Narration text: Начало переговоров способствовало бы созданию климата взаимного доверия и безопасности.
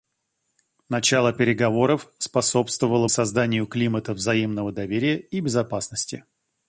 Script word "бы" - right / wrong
wrong